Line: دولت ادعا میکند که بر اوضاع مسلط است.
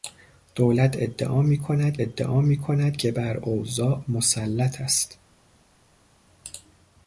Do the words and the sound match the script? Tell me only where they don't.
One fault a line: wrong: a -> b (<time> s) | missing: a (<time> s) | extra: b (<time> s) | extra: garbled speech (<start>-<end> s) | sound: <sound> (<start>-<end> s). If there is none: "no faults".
extra: ادعا میکند (2.0 s)